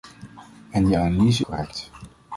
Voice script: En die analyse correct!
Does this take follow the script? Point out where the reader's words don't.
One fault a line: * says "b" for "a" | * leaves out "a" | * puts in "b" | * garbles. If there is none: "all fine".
all fine